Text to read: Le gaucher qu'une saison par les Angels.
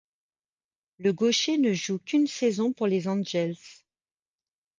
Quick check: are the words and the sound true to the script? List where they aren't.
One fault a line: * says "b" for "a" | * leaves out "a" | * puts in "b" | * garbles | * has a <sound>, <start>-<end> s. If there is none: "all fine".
* puts in "ne joue"
* says "pour" for "par"